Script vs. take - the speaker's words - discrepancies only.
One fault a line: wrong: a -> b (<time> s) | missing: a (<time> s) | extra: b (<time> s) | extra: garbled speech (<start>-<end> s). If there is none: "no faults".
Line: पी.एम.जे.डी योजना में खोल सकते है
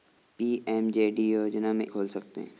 no faults